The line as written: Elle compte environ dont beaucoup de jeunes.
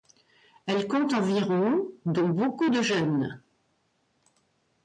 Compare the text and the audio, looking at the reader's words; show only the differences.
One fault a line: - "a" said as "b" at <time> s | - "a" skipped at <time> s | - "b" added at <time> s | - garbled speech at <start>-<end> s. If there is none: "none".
none